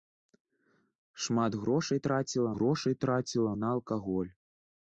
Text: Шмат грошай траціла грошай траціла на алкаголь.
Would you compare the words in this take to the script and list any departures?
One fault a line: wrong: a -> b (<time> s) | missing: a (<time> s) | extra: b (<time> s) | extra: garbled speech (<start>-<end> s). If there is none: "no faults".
no faults